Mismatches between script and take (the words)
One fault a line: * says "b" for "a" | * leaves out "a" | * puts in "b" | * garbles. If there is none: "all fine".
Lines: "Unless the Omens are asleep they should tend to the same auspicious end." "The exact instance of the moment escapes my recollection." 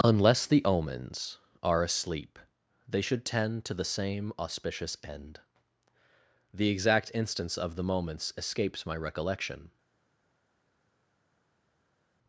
* says "moments" for "moment"